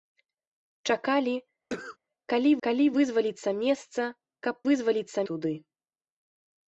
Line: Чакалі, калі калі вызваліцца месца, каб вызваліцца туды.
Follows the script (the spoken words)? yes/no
yes